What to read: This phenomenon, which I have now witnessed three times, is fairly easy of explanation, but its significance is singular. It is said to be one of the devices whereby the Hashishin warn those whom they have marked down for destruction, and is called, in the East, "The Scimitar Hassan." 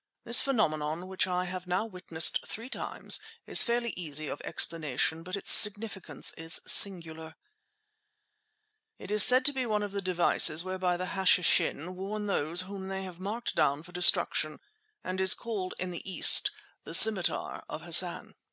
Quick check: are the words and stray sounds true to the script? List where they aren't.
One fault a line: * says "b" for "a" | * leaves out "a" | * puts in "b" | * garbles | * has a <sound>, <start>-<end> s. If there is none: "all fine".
* puts in "of"